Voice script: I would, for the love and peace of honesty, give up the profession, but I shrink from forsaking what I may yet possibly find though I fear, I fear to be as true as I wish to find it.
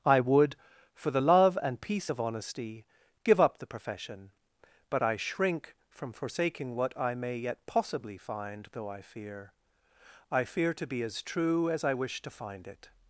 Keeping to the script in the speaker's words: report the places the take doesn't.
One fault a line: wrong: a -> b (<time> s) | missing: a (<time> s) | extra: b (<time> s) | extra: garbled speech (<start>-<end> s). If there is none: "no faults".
no faults